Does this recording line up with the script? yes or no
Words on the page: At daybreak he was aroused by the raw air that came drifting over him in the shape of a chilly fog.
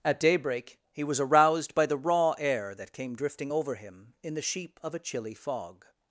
no